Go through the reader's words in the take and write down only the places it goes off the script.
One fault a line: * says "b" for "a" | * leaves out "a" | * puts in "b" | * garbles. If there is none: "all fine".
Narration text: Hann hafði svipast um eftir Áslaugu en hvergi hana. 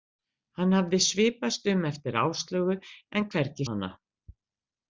all fine